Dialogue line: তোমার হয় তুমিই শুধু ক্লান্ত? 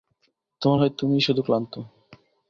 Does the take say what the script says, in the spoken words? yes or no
yes